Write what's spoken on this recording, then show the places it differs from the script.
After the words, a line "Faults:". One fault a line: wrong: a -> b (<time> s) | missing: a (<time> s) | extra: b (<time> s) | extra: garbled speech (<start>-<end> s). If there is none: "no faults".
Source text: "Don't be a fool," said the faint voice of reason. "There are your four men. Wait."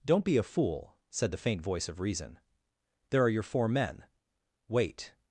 "Don't be a fool," said the faint voice of reason. "There are your four men. Wait."
Faults:
no faults